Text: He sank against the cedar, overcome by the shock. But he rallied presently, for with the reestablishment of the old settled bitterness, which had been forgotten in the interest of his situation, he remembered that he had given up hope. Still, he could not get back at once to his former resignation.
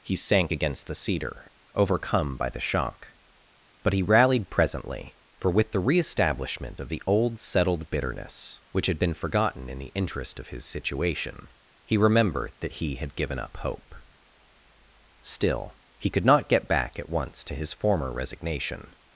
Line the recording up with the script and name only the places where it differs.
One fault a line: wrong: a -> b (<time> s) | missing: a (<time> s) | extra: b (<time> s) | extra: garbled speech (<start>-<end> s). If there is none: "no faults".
no faults